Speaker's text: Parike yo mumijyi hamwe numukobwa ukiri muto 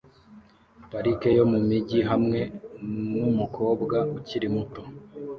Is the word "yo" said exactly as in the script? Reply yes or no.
yes